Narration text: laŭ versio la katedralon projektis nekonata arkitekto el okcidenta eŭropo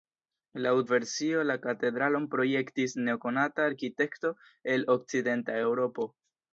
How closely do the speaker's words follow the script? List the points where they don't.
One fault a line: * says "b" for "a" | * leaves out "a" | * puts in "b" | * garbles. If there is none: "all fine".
all fine